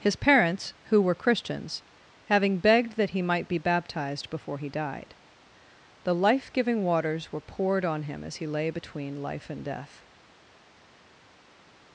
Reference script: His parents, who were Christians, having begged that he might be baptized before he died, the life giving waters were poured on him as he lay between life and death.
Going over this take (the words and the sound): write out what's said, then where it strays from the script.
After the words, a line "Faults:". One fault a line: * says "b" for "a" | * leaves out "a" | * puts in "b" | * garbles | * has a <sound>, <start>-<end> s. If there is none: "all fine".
His parents, who were Christians, having begged that he might be baptized before he died, the life giving waters were poured on him as he lay between life and death.
Faults:
all fine